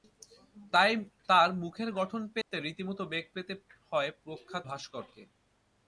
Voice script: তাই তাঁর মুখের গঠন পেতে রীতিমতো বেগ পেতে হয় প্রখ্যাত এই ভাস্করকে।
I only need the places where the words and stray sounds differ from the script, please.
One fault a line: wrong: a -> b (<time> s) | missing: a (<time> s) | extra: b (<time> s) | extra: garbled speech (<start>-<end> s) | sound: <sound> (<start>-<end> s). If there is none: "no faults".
sound: dropout (2.4-2.5 s)
missing: এই (4.7 s)